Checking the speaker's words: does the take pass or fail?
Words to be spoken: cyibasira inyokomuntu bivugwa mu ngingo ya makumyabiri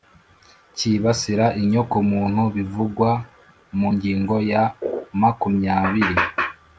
pass